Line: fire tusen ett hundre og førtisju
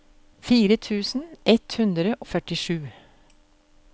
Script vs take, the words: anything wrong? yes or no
yes